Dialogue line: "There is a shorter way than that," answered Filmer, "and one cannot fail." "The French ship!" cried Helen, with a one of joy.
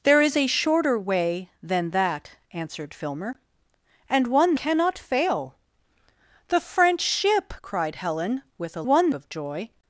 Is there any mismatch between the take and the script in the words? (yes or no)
no